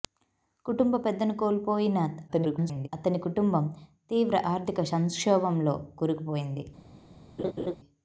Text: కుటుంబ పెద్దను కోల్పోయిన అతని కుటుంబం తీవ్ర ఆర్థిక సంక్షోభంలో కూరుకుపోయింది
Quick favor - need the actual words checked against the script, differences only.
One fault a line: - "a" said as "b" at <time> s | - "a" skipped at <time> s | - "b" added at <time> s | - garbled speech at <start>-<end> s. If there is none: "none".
- garbled speech at 2.3-2.9 s